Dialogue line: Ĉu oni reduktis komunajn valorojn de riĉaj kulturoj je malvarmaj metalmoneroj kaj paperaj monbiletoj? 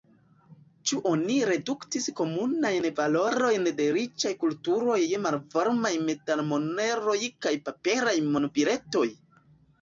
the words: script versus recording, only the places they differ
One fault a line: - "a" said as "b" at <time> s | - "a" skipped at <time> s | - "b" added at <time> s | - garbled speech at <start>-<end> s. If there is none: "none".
none